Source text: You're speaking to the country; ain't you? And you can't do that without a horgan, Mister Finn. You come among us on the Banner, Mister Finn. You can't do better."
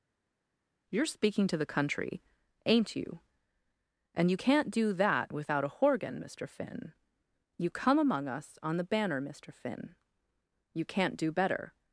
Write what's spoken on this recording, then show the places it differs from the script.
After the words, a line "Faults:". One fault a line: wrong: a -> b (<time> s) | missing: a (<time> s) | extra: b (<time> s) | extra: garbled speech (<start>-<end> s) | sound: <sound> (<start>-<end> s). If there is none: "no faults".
You're speaking to the country; ain't you? And you can't do that without a horgan, Mister Finn. You come among us on the Banner, Mister Finn. You can't do better."
Faults:
no faults